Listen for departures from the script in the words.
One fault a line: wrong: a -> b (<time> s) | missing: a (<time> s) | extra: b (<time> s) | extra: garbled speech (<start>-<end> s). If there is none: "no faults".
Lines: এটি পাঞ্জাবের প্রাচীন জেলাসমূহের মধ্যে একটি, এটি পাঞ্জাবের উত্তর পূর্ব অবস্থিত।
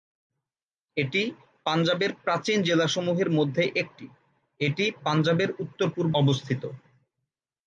no faults